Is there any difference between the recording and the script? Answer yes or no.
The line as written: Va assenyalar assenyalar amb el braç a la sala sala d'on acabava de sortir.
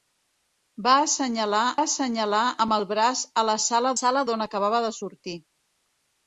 no